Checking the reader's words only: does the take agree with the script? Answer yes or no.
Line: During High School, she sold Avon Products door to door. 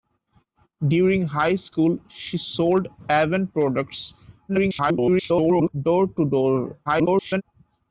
no